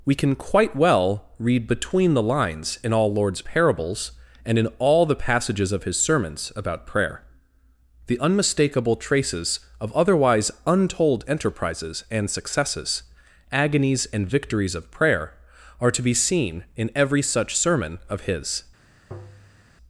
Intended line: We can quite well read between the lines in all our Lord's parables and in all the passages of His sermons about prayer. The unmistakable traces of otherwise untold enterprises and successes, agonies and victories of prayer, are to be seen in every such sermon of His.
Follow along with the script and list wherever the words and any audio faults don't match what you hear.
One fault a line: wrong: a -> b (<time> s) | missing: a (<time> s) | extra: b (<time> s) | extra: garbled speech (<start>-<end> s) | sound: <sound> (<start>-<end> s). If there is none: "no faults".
missing: our (3.1 s)
sound: tap (19.1-19.6 s)